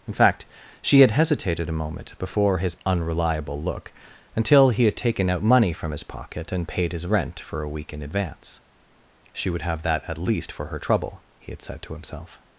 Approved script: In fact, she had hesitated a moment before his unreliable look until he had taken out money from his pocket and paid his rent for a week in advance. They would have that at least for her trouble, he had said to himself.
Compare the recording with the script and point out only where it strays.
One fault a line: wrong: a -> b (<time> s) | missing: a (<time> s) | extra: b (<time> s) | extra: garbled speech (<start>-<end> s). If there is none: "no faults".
wrong: They -> She (9.3 s)